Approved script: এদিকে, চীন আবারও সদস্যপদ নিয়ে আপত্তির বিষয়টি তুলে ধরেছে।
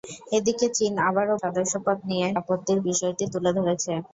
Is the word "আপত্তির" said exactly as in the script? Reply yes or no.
yes